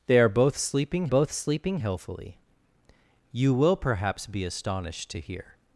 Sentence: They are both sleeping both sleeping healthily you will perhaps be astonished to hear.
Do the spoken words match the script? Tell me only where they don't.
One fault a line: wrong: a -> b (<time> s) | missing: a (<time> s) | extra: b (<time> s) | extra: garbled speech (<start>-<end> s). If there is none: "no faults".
no faults